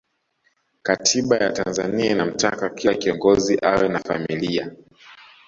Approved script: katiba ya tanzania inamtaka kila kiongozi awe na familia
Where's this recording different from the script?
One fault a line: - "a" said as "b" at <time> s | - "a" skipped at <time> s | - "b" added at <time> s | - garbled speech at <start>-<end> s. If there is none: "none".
none